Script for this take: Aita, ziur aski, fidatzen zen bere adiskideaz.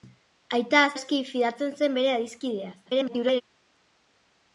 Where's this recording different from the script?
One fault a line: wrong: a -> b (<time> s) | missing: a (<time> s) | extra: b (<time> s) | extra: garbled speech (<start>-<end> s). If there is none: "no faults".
missing: ziur (0.8 s)
extra: garbled speech (2.9-3.4 s)